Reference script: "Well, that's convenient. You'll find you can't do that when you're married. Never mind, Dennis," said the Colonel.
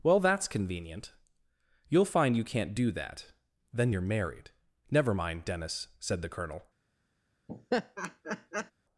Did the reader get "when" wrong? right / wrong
wrong